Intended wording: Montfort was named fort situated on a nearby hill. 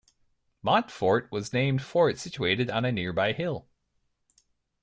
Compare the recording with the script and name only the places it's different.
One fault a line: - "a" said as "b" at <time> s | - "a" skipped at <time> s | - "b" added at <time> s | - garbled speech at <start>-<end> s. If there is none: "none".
none